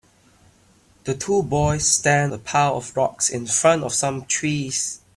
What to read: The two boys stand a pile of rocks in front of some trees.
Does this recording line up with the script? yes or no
yes